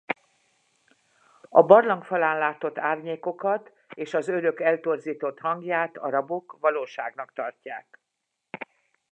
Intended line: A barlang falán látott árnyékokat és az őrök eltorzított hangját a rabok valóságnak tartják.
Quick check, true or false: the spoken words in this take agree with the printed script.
true